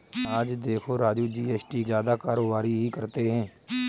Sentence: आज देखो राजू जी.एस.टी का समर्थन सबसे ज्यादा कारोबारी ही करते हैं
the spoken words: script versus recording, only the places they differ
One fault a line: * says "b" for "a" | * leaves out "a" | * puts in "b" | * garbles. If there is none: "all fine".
* leaves out "का समर्थन सबसे"